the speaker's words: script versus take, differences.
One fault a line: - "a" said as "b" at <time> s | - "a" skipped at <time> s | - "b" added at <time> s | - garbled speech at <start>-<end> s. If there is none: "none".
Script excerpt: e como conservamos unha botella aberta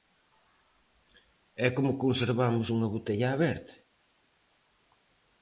none